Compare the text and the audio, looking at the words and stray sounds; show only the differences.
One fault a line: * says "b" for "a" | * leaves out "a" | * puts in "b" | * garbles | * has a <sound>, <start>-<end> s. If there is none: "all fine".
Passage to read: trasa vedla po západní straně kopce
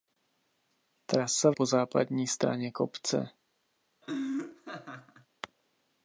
* leaves out "vedla"
* has a laugh, 4.0-5.3 s